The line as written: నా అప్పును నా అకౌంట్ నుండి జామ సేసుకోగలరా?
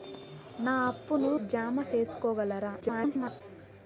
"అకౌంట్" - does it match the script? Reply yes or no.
no